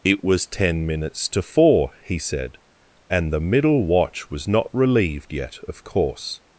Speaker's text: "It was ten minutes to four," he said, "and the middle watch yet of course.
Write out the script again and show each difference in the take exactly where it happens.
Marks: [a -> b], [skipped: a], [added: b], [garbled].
"It was ten minutes to four," he said, "and the middle watch [added: was not relieved] yet of course.